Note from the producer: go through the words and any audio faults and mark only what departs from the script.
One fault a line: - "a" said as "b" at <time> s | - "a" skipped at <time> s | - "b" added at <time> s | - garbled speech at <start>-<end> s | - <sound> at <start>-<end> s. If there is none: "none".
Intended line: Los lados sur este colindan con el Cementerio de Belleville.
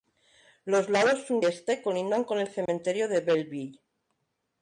- dropout at 2.7-2.7 s